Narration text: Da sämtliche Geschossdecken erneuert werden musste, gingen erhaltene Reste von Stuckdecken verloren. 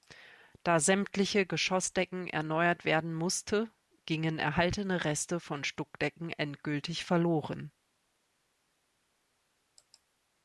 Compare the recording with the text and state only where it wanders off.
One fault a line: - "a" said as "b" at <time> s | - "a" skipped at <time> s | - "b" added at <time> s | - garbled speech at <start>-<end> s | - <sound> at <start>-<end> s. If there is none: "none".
- "endgültig" added at 6.3 s